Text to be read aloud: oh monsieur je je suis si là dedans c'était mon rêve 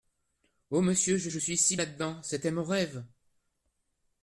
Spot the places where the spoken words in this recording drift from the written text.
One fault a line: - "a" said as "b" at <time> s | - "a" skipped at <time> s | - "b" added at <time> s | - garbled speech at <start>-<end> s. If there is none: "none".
none